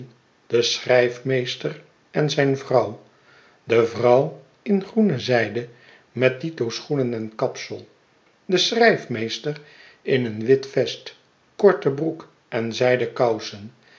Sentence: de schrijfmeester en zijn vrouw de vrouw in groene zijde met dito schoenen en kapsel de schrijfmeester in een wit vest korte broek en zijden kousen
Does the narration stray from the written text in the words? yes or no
no